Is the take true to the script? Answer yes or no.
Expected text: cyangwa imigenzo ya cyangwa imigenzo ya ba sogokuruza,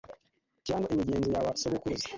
no